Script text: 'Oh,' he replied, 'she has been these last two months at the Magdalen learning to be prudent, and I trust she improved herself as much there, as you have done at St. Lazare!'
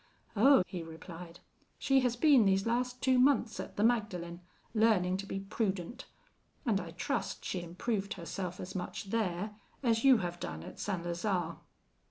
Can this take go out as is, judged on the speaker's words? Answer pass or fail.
pass